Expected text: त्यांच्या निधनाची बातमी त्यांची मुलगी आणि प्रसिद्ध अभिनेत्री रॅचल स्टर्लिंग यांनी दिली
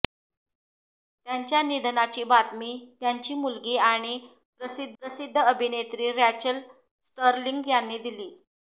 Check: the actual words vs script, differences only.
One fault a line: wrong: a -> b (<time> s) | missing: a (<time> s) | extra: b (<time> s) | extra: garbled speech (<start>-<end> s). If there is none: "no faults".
extra: प्रसिद्ध (5.0 s)